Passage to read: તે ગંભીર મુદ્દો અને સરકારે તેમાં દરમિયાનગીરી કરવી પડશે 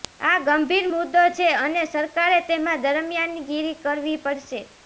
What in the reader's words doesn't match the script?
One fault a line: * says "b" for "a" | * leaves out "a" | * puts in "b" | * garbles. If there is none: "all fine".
* says "આ" for "તે"
* puts in "છે"